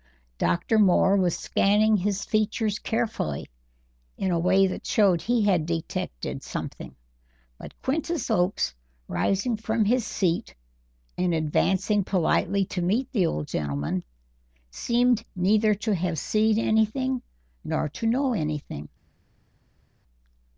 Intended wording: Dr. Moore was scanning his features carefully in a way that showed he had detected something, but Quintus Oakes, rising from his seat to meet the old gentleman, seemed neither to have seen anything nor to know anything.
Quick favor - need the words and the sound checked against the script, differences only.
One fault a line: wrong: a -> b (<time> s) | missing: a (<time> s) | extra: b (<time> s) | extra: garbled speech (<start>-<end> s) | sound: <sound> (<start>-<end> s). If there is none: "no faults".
extra: and advancing politely (11.2 s)